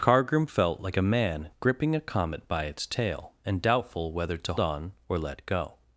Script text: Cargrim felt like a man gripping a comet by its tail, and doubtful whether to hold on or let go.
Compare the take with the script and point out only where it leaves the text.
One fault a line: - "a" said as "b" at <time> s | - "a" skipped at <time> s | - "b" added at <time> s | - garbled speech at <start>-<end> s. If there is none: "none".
- "hold" skipped at 4.5 s